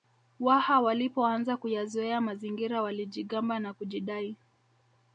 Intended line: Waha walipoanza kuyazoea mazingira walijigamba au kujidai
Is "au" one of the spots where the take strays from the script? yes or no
yes